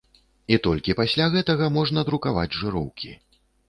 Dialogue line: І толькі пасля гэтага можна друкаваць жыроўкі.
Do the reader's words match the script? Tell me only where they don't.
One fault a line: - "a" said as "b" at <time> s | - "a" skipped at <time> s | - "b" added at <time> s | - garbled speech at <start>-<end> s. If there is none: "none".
none